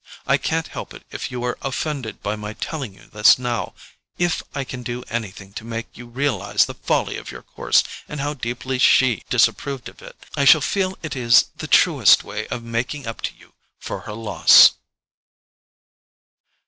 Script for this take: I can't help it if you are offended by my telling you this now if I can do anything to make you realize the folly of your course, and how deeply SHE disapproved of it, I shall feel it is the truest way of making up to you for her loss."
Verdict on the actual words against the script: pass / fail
pass